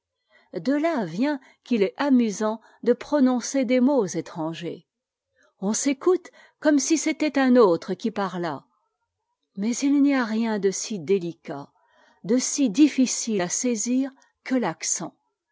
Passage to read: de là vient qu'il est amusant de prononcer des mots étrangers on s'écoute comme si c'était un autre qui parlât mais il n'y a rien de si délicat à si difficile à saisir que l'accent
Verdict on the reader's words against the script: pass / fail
fail